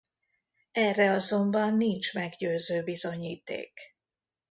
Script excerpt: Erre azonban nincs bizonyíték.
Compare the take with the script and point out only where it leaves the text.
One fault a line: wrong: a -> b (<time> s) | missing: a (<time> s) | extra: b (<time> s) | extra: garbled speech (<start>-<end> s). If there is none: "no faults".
extra: meggyőző (2.1 s)